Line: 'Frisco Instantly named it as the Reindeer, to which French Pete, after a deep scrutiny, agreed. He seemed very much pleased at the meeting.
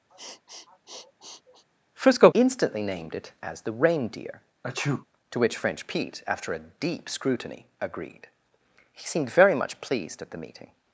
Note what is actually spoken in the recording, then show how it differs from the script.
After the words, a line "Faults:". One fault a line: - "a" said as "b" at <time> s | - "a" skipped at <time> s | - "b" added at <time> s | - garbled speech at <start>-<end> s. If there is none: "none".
'Frisco Instantly named it as the Reindeer, to which French Pete, after a deep scrutiny, agreed. He seemed very much pleased at the meeting.
Faults:
none